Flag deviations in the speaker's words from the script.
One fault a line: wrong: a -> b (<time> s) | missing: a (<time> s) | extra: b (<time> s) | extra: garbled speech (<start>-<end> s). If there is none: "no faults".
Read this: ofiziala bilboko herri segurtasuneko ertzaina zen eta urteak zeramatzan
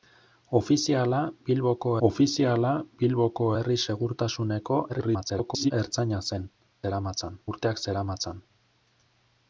extra: ofiziala bilboko (2.1 s)
extra: garbled speech (4.9-5.7 s)
wrong: eta -> zeramatzan (6.8 s)